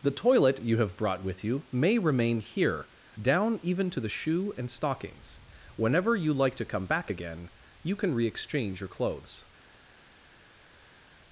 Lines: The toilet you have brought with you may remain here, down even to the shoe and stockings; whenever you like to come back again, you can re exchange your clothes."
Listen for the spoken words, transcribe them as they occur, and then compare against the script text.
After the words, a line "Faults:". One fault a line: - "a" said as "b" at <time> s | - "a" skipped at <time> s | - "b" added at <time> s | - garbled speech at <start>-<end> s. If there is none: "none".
The toilet you have brought with you may remain here, down even to the shoe and stockings; whenever you like to come back again, you can re exchange your clothes."
Faults:
none